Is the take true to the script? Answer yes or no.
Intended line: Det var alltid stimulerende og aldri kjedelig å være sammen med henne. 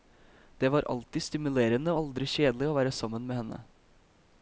no